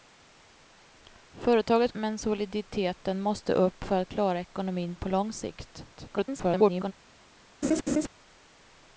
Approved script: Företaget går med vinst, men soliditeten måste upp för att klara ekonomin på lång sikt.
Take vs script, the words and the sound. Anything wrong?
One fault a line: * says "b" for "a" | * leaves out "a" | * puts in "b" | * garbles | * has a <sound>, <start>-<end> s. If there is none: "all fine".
* leaves out "går med vinst"
* garbles
* has a laugh, 7.6-8.1 s